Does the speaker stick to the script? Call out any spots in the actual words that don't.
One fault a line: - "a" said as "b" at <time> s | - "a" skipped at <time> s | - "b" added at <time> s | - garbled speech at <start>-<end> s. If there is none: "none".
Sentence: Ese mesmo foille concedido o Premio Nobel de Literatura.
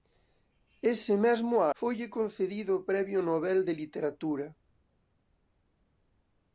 none